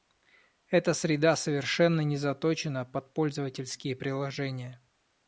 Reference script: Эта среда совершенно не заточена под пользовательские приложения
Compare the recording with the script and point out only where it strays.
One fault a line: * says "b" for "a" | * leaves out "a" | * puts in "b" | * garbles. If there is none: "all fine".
all fine